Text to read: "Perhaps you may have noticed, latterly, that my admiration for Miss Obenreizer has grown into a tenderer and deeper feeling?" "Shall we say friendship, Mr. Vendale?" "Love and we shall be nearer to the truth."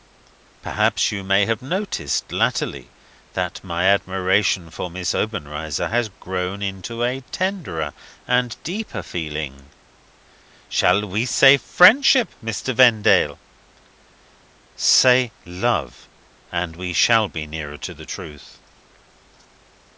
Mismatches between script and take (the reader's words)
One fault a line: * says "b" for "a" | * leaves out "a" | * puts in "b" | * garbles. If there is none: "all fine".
* puts in "Say"